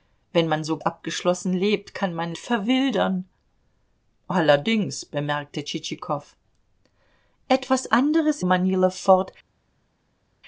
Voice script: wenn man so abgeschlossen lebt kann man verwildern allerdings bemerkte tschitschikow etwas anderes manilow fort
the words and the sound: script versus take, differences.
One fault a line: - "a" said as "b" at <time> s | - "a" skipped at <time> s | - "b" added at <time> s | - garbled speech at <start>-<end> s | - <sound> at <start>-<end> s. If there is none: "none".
none